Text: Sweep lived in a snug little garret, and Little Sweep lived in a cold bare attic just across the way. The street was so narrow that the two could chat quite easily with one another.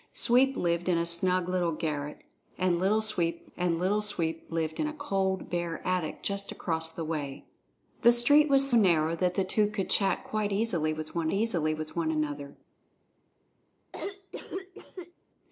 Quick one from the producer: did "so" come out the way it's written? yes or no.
no